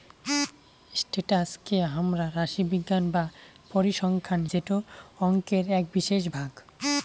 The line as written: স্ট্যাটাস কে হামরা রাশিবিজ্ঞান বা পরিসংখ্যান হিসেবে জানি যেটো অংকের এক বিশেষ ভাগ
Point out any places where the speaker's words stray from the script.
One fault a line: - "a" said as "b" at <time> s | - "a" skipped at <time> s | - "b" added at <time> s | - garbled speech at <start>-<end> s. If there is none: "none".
- "হিসেবে জানি" skipped at 4.4 s